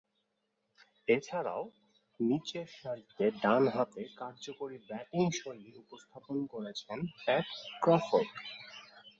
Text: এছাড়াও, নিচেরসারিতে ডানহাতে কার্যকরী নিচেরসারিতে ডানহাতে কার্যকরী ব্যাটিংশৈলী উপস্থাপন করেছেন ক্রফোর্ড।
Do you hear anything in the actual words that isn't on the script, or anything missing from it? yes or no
yes